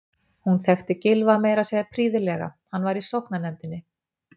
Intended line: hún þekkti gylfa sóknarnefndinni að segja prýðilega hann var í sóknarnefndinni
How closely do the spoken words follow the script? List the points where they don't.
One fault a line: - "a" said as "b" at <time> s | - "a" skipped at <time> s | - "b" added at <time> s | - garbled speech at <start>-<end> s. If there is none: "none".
- "sóknarnefndinni" said as "meira" at 1.4 s